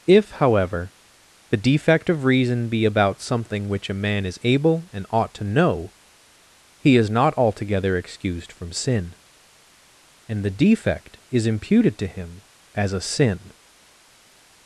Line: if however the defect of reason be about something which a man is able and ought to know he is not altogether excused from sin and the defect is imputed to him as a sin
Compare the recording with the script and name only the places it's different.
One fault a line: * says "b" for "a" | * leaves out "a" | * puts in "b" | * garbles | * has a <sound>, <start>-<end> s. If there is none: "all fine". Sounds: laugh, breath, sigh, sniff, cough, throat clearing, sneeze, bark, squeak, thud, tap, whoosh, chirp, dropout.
all fine